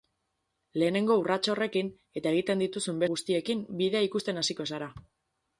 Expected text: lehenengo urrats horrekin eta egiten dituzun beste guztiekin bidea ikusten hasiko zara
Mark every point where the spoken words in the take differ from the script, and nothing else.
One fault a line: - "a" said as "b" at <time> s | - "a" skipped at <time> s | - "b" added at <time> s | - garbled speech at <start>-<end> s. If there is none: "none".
- "beste" skipped at 3.0 s